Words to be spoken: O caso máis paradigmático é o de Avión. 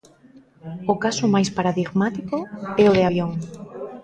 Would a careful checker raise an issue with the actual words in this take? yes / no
no